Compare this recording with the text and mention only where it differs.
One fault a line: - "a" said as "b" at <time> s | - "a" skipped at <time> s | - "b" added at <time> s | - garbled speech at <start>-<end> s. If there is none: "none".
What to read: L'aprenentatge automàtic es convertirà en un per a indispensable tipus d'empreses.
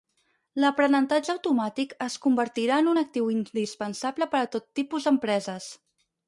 - "actiu indispensable" added at 3.0 s
- "indispensable" said as "tot" at 4.6 s